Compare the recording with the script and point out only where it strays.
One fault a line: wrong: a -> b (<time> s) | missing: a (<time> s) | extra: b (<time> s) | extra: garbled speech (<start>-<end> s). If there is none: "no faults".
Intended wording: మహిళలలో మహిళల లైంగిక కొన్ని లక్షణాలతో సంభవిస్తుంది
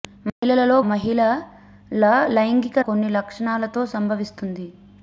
no faults